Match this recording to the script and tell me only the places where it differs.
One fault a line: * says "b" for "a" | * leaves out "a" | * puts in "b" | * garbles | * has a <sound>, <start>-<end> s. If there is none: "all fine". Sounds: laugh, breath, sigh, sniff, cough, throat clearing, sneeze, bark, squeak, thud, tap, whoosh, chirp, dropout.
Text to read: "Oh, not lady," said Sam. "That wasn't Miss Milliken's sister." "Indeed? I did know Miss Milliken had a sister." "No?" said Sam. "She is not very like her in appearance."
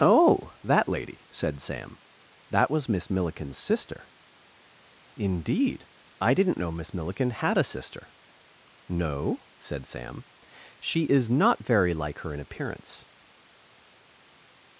* says "that" for "not"
* says "was" for "wasn't"
* says "didn't" for "did"